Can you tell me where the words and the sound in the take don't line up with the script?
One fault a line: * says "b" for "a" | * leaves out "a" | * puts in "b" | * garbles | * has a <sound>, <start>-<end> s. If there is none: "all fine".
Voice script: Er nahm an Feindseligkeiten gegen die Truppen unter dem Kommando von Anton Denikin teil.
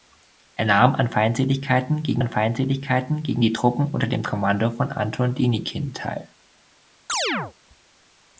* puts in "an Feindseligkeiten gegen"
* has a chirp, 7.1-7.5 s